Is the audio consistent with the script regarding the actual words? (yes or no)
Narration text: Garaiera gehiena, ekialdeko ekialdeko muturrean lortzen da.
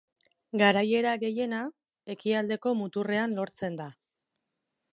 no